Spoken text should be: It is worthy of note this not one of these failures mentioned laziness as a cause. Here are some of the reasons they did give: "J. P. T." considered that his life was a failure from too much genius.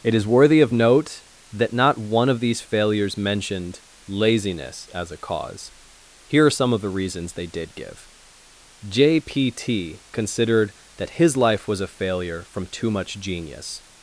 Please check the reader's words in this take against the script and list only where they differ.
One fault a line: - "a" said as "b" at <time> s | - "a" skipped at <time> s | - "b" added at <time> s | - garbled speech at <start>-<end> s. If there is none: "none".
- "this" said as "that" at 1.5 s